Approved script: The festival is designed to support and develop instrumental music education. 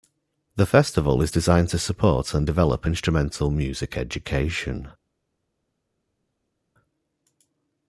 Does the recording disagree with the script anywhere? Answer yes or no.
no